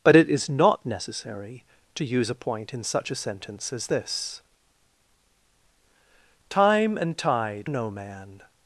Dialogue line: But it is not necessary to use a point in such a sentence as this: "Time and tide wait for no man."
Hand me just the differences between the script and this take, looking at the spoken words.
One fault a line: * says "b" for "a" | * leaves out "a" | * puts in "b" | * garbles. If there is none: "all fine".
* leaves out "wait for"